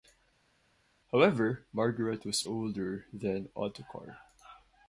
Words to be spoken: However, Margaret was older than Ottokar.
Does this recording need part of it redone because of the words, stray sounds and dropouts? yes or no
no